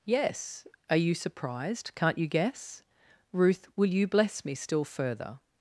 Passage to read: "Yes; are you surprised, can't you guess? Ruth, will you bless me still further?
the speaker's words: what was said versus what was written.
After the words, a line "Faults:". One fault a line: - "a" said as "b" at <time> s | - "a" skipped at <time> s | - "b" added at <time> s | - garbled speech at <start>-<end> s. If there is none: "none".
"Yes; are you surprised, can't you guess? Ruth, will you bless me still further?
Faults:
none